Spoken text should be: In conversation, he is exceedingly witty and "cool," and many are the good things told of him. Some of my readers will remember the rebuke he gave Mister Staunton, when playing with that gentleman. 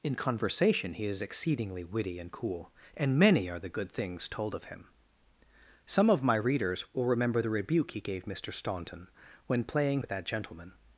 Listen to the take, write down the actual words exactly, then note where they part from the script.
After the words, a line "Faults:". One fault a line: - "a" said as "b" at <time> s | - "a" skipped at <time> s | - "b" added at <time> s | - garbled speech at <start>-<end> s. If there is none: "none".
In conversation, he is exceedingly witty and "cool," and many are the good things told of him. Some of my readers will remember the rebuke he gave Mister Staunton, when playing with that gentleman.
Faults:
none